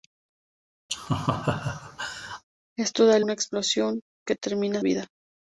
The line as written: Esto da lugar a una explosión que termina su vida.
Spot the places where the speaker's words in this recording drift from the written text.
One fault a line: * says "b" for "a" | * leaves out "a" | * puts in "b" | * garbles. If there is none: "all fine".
* leaves out "lugar a"
* leaves out "su"